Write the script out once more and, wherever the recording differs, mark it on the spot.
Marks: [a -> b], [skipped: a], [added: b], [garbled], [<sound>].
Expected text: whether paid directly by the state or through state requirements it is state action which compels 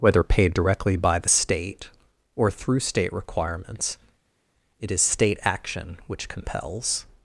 whether paid directly by the state or through state requirements it is state action which compels